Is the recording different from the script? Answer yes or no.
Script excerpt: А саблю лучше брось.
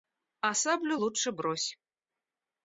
no